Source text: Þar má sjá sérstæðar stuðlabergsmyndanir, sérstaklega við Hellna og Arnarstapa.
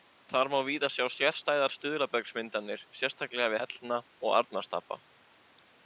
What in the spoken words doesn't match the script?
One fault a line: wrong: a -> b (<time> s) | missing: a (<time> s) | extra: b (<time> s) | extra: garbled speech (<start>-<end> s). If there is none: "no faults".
extra: víða (0.7 s)